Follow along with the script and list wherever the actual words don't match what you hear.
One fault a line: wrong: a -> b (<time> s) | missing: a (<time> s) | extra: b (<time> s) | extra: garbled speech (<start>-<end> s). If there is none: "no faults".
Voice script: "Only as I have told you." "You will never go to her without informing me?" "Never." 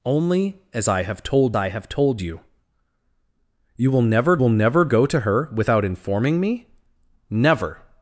extra: I have told (1.5 s)
extra: will never (4.4 s)